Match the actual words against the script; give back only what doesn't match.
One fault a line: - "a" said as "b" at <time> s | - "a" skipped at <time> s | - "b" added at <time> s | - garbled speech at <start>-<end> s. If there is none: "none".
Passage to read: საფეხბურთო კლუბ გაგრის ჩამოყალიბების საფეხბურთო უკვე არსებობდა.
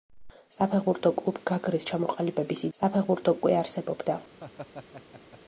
none